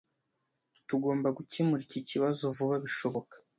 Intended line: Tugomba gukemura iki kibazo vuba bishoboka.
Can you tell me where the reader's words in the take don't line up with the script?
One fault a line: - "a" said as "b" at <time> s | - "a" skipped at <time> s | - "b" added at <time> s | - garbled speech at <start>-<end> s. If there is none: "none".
none